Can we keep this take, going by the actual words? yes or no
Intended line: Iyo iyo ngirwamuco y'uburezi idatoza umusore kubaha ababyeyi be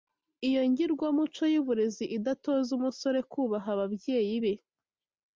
no